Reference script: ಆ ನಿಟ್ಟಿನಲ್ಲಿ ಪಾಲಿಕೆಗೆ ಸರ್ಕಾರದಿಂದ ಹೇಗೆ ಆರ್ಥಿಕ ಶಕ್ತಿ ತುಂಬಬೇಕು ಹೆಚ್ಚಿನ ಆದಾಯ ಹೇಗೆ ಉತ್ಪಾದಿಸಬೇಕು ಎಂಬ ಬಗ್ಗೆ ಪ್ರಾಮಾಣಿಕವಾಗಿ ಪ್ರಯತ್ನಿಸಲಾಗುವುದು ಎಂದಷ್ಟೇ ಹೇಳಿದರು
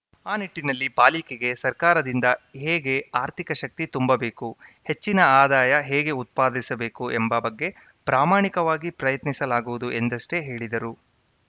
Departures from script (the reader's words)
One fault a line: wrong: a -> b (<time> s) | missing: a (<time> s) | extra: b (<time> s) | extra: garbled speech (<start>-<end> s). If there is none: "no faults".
no faults